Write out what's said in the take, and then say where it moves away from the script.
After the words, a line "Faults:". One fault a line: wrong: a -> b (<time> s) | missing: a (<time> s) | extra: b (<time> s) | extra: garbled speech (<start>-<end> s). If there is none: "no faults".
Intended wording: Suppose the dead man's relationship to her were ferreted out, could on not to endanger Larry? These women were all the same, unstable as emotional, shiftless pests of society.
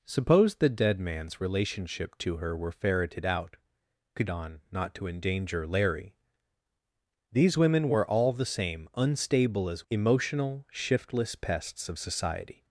Suppose the dead man's relationship to her were ferreted out, could on not to endanger Larry? These women were all the same, unstable as emotional, shiftless pests of society.
Faults:
no faults